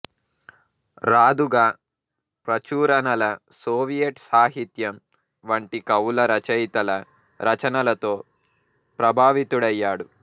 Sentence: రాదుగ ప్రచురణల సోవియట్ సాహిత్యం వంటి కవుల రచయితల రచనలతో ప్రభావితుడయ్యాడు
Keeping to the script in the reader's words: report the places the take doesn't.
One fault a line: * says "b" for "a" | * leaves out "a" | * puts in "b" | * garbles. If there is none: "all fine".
all fine